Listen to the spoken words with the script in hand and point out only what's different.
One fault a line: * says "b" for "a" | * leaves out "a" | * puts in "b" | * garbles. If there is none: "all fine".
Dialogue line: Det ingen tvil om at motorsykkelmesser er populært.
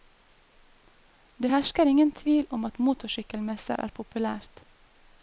* puts in "hersker"